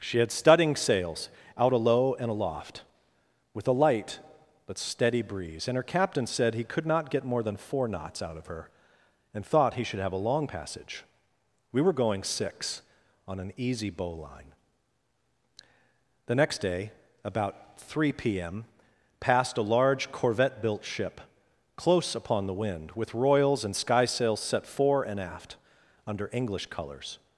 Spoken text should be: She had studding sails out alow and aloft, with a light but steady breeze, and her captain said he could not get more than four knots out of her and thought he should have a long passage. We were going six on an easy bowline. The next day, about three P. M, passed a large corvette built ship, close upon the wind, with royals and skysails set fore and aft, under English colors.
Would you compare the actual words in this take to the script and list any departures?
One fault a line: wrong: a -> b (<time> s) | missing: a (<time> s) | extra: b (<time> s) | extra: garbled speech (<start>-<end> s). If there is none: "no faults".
no faults